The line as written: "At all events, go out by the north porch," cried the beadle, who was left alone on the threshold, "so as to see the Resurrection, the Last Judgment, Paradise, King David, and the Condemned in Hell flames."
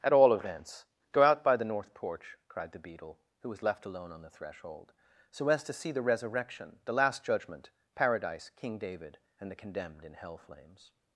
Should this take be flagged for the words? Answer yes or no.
no